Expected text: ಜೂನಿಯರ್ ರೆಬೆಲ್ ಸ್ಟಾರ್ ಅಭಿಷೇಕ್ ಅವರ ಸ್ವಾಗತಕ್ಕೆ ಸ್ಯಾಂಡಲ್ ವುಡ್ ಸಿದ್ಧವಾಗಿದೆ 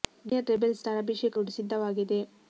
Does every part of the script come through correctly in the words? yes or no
no